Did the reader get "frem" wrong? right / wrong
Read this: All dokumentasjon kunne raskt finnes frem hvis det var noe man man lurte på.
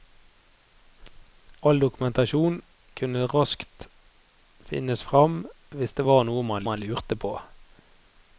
right